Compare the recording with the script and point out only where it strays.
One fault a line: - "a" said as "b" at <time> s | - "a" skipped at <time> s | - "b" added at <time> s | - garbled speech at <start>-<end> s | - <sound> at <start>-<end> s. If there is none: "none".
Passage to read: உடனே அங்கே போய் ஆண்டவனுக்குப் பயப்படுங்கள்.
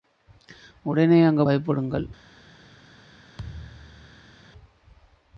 - "போய் ஆண்டவனுக்குப்" skipped at 1.4 s
- thud at 3.4-4.3 s